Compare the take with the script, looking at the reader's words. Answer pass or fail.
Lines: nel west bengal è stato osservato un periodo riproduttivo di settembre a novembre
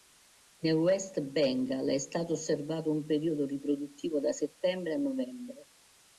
fail